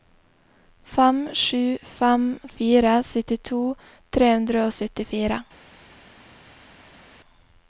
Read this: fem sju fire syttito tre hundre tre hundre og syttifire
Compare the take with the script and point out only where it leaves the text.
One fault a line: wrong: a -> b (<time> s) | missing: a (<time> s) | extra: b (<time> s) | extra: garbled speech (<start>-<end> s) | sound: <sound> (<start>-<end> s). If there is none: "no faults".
extra: fem (2.0 s)
missing: tre hundre (4.7 s)